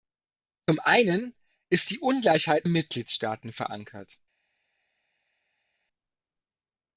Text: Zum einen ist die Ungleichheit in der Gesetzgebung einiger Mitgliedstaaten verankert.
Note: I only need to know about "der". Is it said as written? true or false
false